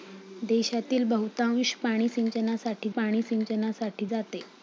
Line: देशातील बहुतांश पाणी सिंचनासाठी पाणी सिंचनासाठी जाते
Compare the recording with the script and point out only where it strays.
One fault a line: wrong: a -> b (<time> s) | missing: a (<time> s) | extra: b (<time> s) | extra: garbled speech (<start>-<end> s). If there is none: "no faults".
no faults